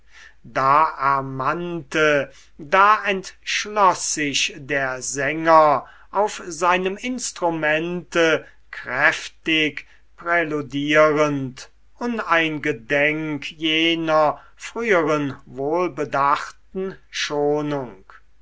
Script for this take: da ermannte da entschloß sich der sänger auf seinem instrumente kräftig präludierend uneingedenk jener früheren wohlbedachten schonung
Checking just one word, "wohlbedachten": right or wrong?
right